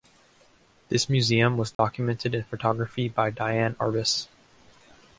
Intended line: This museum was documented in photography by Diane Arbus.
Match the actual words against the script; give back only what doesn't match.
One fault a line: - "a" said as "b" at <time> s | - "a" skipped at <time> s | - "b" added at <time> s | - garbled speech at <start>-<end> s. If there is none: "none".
none